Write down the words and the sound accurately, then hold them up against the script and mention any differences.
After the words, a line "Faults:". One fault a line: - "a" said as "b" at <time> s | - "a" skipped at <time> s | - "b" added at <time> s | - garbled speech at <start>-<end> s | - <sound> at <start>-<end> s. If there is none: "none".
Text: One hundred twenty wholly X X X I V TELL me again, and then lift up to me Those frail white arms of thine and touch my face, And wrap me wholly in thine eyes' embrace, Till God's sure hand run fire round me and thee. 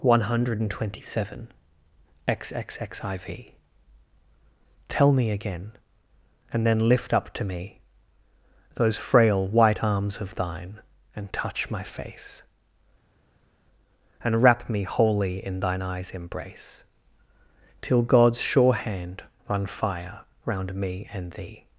One hundred twenty seven X X X I V TELL me again, and then lift up to me Those frail white arms of thine and touch my face, And wrap me wholly in thine eyes' embrace, Till God's sure hand run fire round me and thee.
Faults:
- "wholly" said as "seven" at 1.1 s